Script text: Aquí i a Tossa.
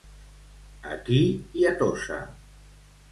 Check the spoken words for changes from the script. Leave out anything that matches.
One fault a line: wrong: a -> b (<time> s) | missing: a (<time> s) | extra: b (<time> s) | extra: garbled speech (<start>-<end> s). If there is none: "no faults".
no faults